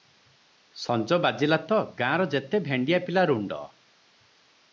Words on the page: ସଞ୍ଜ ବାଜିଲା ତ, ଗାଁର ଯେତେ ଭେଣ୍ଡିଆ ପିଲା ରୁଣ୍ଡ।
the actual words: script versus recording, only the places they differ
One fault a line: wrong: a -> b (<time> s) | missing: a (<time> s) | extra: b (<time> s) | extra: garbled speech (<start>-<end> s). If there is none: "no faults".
no faults